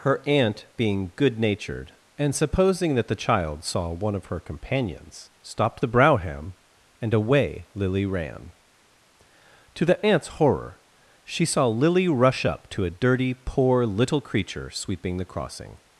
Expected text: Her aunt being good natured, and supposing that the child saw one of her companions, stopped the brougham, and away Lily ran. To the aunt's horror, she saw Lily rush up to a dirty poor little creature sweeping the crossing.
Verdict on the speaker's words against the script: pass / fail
pass